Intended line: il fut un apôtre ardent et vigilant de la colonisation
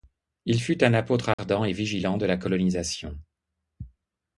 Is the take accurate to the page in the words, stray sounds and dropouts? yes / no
no